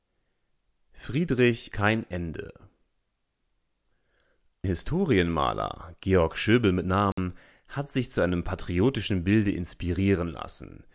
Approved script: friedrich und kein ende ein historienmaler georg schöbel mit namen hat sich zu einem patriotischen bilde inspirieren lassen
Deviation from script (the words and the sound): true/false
true